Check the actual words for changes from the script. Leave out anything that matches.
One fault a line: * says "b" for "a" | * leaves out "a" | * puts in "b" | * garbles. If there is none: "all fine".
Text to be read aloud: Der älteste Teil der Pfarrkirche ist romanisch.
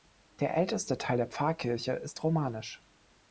all fine